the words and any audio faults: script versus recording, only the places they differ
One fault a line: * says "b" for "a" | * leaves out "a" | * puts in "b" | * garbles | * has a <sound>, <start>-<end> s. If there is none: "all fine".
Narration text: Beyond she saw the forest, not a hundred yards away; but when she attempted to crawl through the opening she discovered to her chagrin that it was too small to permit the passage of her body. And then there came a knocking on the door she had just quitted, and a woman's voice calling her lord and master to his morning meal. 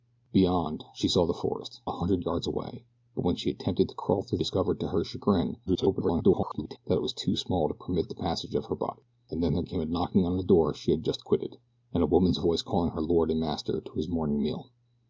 * leaves out "not"
* leaves out "the opening she"
* garbles